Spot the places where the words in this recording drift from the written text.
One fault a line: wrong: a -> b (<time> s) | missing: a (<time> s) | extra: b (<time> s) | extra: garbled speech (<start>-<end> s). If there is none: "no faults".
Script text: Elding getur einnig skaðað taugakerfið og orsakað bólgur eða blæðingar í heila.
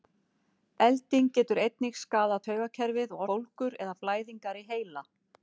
missing: orsakað (3.3 s)